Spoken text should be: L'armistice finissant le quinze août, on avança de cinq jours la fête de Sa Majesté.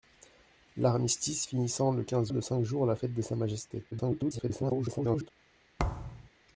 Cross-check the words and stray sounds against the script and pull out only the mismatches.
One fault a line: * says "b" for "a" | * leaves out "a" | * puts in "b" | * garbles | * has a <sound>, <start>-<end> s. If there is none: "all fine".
* leaves out "août on avança"
* garbles
* has a thud, 5.8-6.3 s